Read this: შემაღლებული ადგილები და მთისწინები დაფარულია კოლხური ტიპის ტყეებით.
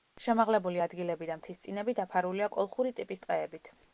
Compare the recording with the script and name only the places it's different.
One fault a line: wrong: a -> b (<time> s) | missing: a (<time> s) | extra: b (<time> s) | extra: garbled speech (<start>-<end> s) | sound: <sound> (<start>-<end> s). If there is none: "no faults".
no faults